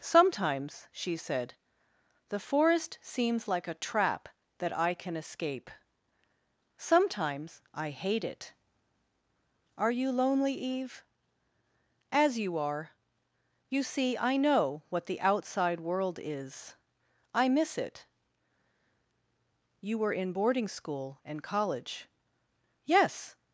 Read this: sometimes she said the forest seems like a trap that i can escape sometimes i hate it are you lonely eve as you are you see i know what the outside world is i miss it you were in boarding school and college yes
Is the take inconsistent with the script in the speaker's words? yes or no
no